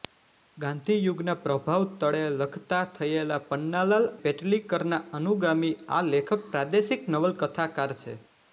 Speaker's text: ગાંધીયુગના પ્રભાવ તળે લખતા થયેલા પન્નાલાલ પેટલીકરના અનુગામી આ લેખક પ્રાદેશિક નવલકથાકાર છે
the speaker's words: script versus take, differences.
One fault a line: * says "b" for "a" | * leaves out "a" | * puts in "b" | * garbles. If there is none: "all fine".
all fine